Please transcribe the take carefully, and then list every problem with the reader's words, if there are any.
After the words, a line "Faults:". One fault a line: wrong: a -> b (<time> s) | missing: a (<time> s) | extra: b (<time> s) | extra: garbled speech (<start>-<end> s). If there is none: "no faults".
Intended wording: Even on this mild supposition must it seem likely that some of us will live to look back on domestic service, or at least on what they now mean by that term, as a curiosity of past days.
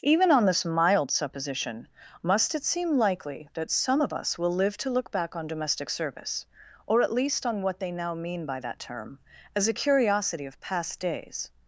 Even on this mild supposition must it seem likely that some of us will live to look back on domestic service, or at least on what they now mean by that term, as a curiosity of past days.
Faults:
no faults